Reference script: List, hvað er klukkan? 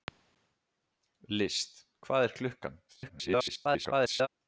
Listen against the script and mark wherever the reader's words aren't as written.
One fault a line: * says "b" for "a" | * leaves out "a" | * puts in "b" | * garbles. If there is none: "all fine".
* garbles